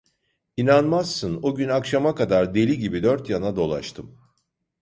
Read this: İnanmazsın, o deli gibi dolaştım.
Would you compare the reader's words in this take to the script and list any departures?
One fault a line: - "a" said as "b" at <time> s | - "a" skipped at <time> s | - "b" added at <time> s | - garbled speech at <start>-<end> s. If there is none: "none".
- "gün akşama kadar" added at 1.5 s
- "dört yana" added at 3.0 s